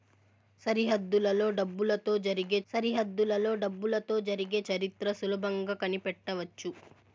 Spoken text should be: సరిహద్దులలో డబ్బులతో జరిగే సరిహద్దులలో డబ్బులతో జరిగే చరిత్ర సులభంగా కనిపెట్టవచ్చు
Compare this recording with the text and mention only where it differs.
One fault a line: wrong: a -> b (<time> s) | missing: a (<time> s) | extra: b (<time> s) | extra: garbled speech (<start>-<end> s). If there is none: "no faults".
no faults